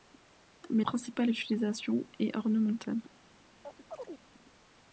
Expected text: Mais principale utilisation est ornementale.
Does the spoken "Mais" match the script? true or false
true